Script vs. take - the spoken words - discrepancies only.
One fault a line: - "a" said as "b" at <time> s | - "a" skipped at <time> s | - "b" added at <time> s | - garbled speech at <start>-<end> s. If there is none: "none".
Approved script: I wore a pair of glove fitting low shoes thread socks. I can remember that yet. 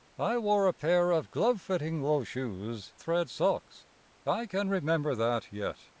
none